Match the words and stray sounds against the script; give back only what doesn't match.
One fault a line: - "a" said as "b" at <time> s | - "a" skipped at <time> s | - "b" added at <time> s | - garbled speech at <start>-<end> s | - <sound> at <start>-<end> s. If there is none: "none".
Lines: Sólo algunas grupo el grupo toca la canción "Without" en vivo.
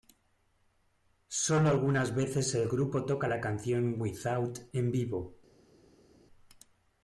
- "grupo" said as "veces" at 2.1 s